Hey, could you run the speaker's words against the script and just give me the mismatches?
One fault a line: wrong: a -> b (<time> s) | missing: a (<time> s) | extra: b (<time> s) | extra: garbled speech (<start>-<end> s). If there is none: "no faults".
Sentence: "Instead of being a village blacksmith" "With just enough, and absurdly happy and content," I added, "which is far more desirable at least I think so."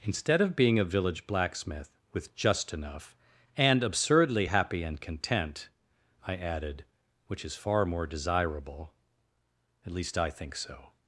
no faults